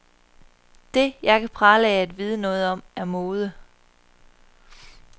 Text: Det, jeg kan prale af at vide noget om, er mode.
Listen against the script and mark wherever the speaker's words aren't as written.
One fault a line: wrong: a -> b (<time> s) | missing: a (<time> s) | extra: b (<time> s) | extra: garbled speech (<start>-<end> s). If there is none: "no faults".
no faults